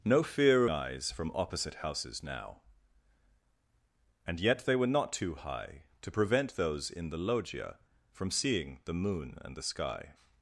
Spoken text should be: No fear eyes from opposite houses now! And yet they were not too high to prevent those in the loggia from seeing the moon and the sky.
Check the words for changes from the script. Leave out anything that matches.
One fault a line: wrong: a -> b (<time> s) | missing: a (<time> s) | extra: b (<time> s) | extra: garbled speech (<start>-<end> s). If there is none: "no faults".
no faults